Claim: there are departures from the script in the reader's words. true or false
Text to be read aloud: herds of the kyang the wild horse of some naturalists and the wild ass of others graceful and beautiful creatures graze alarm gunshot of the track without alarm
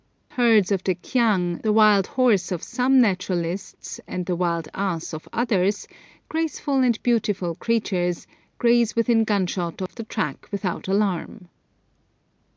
true